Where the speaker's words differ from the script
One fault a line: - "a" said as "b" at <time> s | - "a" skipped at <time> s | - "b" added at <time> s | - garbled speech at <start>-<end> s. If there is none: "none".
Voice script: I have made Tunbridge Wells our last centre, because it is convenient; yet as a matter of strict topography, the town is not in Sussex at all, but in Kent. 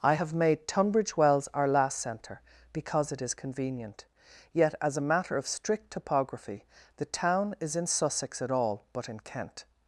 - "not" skipped at 7.7 s